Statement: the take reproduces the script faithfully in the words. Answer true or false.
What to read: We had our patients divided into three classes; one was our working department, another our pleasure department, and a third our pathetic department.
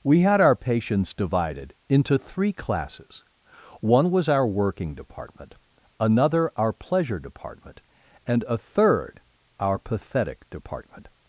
true